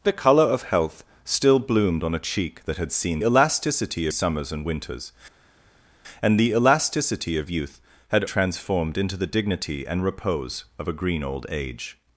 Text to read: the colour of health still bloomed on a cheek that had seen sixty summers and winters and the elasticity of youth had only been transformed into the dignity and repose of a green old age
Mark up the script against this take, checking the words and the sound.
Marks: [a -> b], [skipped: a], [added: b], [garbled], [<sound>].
the colour of health still bloomed on a cheek that had seen [sixty -> elasticity] summers and winters and the elasticity of youth had [skipped: only been] transformed into the dignity and repose of a green old age